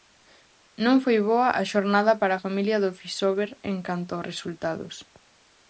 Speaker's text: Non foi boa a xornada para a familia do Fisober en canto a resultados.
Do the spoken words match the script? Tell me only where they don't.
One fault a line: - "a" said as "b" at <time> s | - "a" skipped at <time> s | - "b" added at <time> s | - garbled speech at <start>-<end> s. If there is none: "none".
none